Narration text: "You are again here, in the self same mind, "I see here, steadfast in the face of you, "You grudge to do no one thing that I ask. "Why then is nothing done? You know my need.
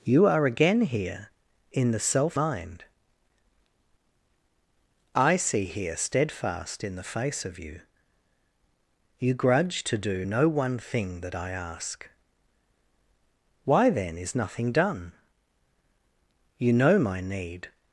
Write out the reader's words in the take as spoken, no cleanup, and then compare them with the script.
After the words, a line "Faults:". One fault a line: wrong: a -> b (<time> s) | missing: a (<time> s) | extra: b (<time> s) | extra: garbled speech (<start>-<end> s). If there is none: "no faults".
"You are again here, in the self mind, "I see here, steadfast in the face of you, "You grudge to do no one thing that I ask. "Why then is nothing done? You know my need.
Faults:
missing: same (2.4 s)